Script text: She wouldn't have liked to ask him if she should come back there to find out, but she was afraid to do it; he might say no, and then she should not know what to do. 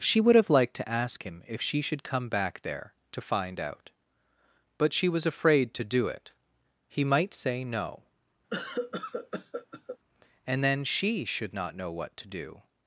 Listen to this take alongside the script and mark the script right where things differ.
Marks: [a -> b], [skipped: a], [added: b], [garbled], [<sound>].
She [wouldn't -> would] have liked to ask him if she should come back there to find out, but she was afraid to do it; he might say no, [cough] and then she should not know what to do.